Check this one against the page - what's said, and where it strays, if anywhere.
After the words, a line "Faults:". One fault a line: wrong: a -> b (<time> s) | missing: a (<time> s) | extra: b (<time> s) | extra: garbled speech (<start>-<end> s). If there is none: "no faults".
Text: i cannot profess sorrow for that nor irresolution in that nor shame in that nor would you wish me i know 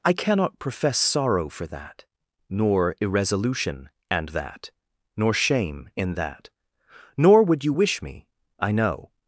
i cannot profess sorrow for that nor irresolution and that nor shame in that nor would you wish me i know
Faults:
wrong: in -> and (4.1 s)